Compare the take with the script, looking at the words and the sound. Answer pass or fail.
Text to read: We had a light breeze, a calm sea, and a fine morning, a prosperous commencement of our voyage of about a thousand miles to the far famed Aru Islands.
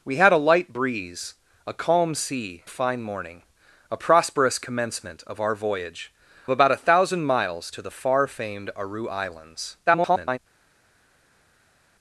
fail